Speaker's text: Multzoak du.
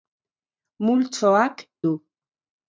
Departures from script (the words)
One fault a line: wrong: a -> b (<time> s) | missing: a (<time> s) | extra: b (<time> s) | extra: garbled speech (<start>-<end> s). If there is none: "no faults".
no faults